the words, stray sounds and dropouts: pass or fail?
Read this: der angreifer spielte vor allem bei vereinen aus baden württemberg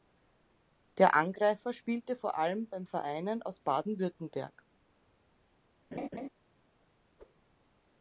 fail